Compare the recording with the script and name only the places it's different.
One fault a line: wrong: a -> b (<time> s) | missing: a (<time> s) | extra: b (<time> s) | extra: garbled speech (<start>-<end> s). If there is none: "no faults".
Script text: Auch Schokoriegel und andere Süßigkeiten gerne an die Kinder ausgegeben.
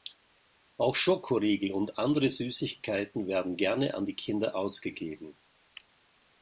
extra: werden (3.3 s)